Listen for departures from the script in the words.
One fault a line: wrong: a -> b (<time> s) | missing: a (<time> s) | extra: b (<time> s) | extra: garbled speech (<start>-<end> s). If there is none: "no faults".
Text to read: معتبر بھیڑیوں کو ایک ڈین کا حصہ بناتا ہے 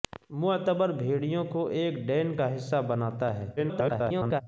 extra: garbled speech (3.6-4.4 s)